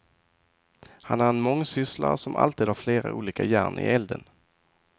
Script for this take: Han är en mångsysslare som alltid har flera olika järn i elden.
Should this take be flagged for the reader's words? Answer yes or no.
no